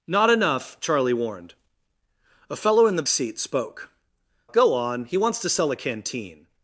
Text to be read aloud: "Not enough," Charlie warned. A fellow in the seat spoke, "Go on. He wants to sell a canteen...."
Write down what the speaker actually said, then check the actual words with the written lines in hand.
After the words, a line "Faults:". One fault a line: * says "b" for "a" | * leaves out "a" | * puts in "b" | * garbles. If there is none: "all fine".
"Not enough," Charlie warned. A fellow in the seat spoke, "Go on. He wants to sell a canteen...."
Faults:
all fine